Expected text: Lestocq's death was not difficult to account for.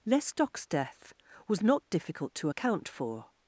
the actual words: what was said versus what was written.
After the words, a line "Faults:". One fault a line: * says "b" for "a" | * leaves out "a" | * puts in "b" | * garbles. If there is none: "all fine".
Lestocq's death was not difficult to account for.
Faults:
all fine